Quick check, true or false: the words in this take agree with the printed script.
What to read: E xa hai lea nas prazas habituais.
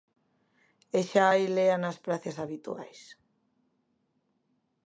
true